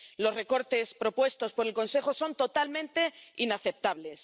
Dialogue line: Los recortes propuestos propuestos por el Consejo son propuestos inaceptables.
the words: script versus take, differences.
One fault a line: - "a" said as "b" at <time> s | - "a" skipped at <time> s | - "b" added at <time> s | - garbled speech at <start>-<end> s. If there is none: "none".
- "propuestos" skipped at 1.5 s
- "propuestos" said as "totalmente" at 2.4 s